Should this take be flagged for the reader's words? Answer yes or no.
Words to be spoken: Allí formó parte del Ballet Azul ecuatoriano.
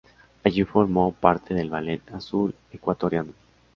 no